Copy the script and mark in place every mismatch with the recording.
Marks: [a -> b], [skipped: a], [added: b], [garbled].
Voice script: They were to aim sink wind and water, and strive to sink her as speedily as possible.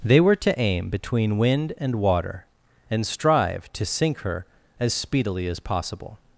They were to aim [sink -> between] wind and water, and strive to sink her as speedily as possible.